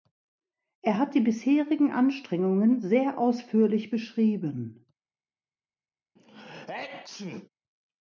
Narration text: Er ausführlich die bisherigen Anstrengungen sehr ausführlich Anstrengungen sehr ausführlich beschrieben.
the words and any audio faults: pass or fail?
fail